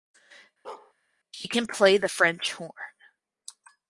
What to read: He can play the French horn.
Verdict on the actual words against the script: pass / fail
fail